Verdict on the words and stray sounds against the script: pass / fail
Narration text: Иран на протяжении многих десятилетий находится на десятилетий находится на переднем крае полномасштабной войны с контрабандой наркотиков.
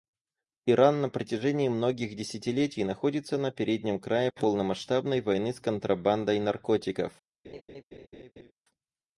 fail